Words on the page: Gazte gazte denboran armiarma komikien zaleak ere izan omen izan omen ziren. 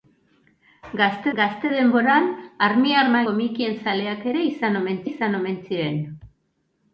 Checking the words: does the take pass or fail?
pass